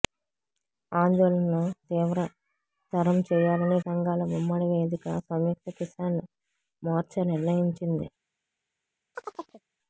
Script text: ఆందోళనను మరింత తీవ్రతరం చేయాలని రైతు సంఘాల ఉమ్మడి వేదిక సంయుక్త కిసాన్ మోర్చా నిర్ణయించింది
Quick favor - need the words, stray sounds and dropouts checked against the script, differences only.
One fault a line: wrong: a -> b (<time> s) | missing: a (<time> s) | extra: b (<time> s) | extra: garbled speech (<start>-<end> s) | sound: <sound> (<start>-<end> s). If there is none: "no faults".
missing: మరింత (1.6 s)
missing: రైతు (3.8 s)
sound: chirp (9.1-9.6 s)